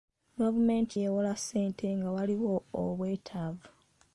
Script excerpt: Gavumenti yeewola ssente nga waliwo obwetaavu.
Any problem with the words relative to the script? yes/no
no